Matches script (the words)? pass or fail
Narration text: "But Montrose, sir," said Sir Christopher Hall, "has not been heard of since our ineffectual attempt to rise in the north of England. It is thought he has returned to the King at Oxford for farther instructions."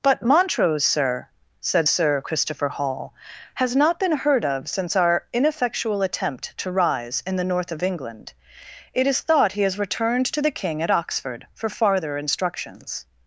pass